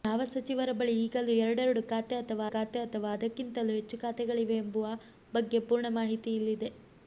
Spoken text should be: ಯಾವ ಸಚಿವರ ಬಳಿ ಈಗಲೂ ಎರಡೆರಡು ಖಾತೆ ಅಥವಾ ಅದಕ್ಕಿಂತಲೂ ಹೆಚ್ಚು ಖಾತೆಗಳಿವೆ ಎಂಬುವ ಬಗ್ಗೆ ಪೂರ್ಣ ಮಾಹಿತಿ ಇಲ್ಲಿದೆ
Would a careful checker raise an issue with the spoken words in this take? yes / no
yes